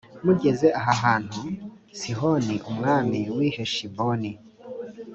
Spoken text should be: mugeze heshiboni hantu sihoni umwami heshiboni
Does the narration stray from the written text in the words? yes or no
yes